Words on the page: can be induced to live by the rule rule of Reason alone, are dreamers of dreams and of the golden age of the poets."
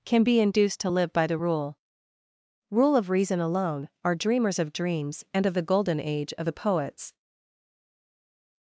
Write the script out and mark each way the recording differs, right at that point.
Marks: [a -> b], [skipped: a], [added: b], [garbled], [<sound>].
can be induced to live by the rule rule of Reason alone, are dreamers of dreams and of the golden age of the poets."